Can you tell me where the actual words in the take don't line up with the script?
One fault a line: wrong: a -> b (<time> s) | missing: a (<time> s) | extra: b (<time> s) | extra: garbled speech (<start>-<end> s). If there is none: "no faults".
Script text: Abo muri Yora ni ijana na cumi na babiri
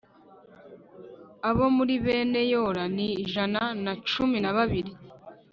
extra: bene (2.0 s)